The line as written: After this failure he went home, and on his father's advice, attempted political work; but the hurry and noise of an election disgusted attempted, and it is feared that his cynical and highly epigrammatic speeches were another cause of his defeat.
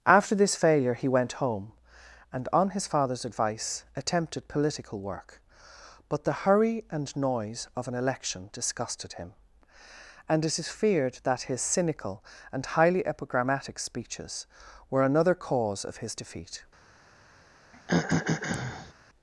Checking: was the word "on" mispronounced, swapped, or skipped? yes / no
no